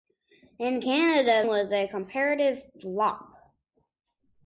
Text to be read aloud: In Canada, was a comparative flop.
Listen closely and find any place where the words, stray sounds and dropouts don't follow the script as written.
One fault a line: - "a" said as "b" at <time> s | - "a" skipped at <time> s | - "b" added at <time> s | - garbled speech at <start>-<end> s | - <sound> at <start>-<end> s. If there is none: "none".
none